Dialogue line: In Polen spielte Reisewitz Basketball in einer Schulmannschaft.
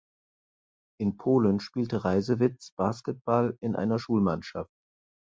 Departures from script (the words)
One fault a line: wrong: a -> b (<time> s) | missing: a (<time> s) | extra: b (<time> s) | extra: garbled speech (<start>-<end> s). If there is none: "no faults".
no faults